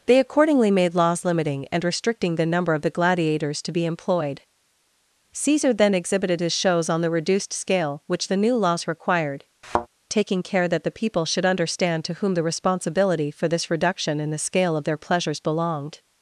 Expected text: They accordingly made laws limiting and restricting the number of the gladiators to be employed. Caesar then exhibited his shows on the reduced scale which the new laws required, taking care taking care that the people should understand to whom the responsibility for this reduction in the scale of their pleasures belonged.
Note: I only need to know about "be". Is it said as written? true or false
true